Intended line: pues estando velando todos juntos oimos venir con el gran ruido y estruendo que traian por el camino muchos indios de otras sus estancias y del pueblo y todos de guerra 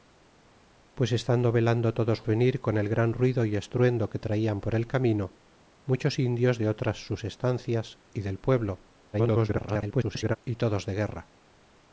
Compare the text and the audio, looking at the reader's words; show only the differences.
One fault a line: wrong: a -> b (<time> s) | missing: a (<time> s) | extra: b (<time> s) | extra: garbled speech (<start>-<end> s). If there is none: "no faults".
missing: juntos oimos (2.2 s)
extra: garbled speech (9.1-10.4 s)